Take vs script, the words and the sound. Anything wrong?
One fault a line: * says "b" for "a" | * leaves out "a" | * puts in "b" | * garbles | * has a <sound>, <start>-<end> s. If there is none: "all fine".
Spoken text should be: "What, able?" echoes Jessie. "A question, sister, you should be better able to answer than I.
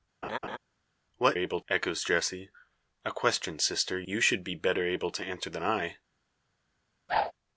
* has a laugh, 0.2-0.6 s
* has a whoosh, 7.1-7.3 s